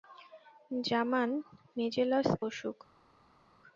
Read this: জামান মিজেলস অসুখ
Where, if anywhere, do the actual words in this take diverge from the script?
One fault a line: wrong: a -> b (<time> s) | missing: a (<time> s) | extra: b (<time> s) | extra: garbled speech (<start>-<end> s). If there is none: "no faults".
no faults